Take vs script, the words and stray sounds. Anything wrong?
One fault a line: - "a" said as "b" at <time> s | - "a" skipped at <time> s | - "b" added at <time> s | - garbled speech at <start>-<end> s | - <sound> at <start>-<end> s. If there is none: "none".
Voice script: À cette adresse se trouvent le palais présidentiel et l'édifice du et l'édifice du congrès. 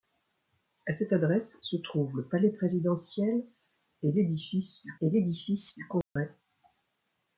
- dropout at 6.0-6.2 s